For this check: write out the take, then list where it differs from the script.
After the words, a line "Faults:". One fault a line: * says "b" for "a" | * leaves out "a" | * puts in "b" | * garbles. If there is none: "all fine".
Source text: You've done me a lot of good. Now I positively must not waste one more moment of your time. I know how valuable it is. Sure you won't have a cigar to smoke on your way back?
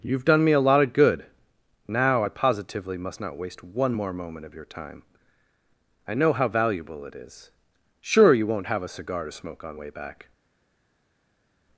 You've done me a lot of good. Now I positively must not waste one more moment of your time. I know how valuable it is. Sure you won't have a cigar to smoke on way back?
Faults:
* leaves out "your"